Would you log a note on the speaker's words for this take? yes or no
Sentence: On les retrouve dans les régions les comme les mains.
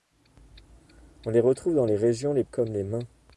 no